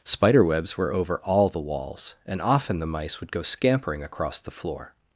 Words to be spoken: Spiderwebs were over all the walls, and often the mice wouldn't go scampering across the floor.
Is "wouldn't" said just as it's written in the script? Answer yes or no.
no